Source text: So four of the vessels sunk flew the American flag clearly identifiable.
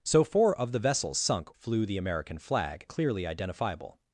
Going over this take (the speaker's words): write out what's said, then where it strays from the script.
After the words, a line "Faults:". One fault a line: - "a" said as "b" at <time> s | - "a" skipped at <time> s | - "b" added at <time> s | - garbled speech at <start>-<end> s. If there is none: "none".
So four of the vessels sunk flew the American flag clearly identifiable.
Faults:
none